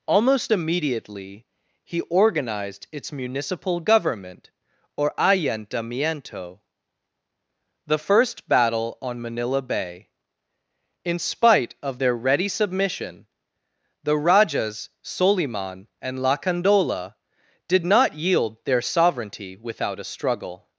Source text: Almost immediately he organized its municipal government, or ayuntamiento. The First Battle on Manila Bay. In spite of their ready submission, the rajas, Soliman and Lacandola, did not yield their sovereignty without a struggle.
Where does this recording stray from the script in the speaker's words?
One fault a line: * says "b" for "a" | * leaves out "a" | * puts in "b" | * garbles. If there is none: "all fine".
all fine